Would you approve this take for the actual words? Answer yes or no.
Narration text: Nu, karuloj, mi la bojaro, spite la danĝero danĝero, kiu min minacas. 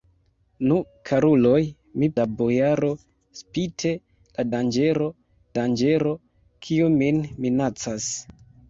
yes